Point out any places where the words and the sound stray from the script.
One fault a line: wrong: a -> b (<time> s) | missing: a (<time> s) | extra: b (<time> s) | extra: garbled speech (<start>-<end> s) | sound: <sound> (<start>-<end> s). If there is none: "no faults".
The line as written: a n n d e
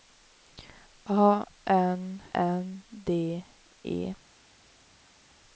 no faults